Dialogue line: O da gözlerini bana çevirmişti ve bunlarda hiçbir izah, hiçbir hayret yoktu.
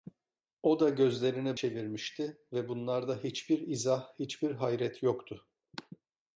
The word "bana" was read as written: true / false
false